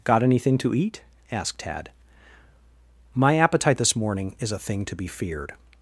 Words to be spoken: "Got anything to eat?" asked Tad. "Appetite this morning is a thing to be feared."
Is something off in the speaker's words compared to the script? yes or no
yes